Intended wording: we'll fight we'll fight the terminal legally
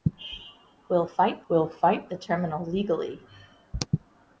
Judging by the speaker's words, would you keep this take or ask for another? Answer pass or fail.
pass